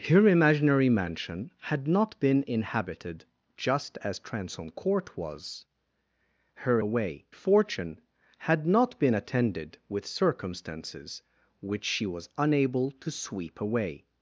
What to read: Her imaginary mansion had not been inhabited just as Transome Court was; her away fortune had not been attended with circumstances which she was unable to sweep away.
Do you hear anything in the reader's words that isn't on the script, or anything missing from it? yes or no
no